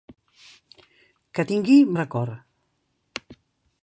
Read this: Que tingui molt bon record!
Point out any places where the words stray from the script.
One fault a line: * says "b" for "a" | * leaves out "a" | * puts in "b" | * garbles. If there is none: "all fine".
* leaves out "molt bon"